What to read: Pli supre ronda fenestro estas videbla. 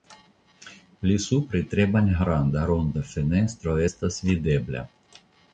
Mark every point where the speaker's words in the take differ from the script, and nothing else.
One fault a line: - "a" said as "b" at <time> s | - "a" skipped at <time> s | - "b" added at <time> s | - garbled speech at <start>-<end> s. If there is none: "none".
- "tre malgranda" added at 1.8 s